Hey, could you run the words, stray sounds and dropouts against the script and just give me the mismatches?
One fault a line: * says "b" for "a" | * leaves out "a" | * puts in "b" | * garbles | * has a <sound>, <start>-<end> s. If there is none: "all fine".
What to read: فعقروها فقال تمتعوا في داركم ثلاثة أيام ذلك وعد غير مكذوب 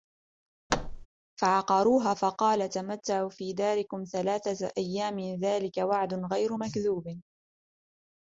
* has a thud, 0.7-1.1 s